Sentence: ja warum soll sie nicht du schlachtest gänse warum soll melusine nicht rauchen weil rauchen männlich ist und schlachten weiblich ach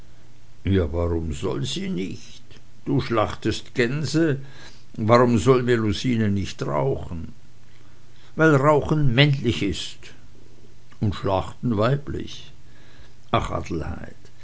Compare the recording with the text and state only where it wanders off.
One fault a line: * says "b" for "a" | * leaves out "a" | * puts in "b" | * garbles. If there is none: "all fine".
all fine